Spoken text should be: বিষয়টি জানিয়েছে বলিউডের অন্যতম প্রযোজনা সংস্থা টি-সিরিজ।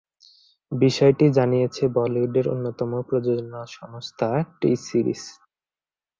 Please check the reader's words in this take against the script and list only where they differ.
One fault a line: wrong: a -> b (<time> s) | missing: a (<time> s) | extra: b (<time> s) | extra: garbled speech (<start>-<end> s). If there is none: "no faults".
no faults